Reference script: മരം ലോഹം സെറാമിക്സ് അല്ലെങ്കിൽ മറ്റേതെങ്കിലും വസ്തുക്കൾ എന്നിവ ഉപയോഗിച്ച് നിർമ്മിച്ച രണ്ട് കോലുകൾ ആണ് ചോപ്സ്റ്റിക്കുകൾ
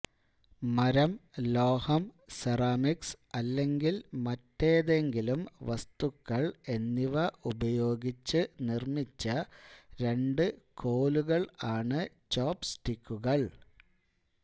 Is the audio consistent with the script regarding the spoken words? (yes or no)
yes